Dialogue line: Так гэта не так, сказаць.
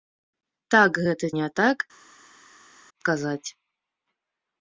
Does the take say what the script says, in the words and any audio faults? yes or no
yes